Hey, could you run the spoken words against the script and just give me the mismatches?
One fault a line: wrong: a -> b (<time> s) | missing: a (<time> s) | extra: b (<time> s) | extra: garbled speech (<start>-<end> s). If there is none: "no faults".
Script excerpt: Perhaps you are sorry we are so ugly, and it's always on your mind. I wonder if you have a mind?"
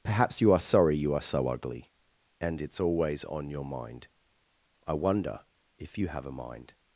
wrong: we -> you (1.0 s)